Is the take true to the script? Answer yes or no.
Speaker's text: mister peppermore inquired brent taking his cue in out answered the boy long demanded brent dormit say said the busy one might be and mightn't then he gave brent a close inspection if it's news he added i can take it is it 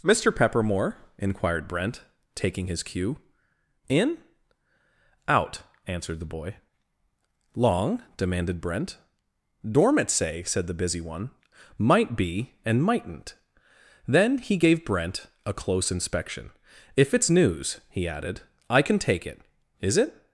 yes